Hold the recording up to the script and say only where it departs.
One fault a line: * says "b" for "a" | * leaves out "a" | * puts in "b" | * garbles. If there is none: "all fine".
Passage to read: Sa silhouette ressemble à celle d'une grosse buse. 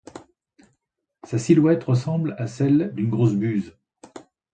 all fine